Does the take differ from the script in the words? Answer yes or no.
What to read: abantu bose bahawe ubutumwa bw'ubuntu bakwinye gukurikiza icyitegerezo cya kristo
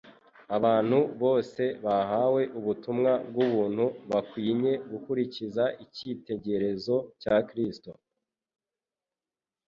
no